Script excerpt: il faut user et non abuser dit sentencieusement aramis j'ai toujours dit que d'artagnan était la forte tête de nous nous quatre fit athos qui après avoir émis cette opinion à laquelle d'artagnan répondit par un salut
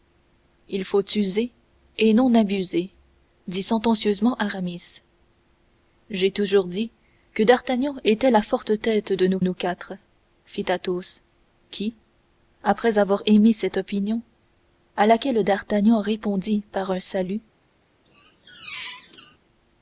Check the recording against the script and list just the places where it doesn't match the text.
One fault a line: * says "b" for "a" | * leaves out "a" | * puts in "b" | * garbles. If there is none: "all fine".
all fine